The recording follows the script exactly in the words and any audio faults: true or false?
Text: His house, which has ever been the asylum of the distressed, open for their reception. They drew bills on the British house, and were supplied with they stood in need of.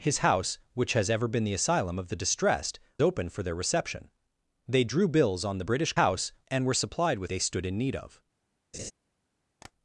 false